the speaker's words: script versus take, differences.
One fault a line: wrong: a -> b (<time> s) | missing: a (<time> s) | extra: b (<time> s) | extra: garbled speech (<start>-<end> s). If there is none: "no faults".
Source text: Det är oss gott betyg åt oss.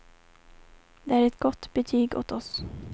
wrong: oss -> ett (1.3 s)